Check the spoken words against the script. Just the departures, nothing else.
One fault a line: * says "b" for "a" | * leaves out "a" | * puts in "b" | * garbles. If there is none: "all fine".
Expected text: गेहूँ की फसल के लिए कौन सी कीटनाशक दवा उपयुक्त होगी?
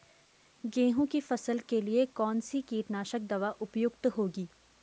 all fine